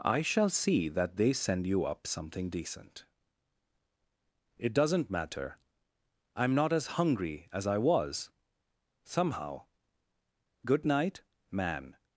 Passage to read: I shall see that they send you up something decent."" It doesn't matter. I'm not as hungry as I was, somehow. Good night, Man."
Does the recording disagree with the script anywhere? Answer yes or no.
no